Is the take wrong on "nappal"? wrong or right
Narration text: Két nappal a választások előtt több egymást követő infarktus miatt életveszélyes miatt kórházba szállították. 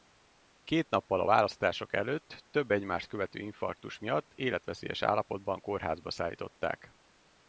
right